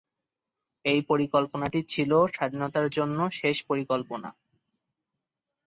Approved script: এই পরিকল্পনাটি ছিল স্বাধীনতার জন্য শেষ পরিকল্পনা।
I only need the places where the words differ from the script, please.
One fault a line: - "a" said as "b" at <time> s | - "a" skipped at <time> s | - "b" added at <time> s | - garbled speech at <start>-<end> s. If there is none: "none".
none